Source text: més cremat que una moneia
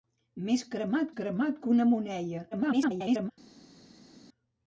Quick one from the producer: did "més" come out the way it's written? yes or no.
yes